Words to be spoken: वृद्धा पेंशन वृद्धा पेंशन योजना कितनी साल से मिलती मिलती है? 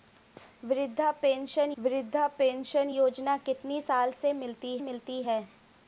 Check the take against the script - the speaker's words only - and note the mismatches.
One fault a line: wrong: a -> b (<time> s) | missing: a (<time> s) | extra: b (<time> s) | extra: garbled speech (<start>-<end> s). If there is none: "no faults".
no faults